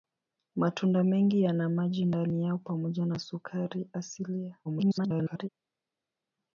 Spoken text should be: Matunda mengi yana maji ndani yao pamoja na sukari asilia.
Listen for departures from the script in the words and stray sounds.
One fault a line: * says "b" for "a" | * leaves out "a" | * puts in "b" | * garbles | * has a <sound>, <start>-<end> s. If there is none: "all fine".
* garbles